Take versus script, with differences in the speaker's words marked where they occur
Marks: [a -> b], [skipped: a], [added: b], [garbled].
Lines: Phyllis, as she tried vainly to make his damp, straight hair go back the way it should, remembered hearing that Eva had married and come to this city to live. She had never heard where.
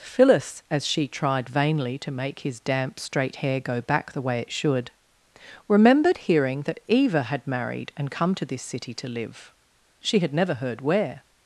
Phyllis, as she tried vainly to make his damp, straight hair go back the way it should, remembered hearing that Eva had married and come to this city to live. She had never heard where.